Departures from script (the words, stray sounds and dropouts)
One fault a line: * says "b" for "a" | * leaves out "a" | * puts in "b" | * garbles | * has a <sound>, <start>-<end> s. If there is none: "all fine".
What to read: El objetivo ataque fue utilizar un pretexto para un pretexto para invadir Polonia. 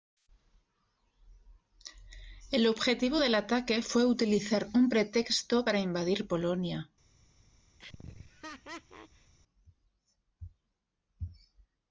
* puts in "del"
* leaves out "un pretexto para"
* has a laugh, 7.8-9.3 s